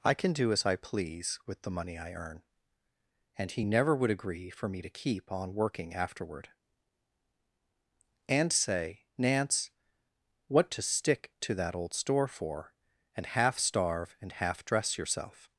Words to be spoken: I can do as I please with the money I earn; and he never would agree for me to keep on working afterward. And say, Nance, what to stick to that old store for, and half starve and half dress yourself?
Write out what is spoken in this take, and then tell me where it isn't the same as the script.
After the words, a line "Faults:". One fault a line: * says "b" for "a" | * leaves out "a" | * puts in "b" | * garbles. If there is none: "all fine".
I can do as I please with the money I earn; and he never would agree for me to keep on working afterward. And say, Nance, what to stick to that old store for, and half starve and half dress yourself?
Faults:
all fine